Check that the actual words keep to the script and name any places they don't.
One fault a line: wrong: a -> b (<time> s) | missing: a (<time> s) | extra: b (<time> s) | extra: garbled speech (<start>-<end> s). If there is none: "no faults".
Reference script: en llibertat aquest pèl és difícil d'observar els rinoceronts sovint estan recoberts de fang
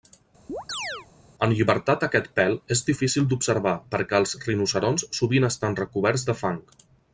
extra: perquè (4.0 s)